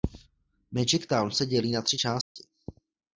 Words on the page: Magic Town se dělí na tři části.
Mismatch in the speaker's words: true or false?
false